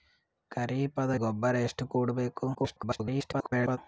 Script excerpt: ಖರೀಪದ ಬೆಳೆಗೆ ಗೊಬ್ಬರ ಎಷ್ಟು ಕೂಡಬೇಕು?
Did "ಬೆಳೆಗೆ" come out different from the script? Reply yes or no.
yes